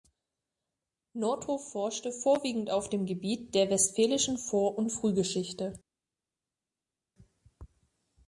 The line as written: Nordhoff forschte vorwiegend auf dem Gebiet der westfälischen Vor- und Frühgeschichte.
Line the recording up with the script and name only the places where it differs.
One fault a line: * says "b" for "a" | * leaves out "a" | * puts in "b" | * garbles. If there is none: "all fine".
all fine